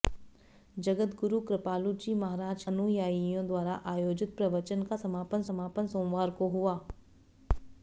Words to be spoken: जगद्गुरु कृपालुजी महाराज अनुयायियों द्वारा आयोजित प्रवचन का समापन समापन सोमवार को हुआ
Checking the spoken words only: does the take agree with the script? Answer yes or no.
yes